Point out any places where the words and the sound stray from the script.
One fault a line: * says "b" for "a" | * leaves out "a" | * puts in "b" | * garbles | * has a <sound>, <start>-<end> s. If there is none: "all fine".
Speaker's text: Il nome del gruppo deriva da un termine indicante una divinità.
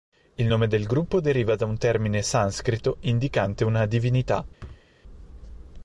* puts in "sanscrito"
* has a thud, 4.6-4.9 s